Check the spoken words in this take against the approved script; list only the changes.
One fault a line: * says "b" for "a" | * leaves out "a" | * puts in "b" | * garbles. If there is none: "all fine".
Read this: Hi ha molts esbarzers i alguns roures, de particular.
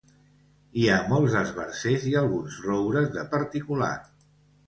all fine